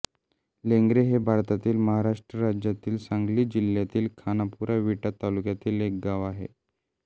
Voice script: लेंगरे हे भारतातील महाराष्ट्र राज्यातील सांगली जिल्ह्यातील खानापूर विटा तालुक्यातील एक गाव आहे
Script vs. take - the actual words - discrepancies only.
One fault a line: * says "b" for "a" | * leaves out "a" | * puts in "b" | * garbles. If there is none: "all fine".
all fine